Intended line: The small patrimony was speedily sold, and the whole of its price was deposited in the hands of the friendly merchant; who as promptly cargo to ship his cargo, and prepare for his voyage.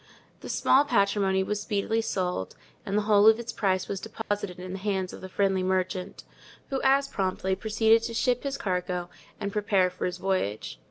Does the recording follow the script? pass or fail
fail